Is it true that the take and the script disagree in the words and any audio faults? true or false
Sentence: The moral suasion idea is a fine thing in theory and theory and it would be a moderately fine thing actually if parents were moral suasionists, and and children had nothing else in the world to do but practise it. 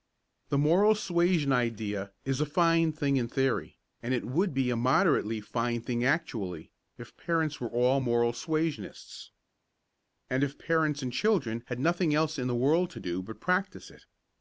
true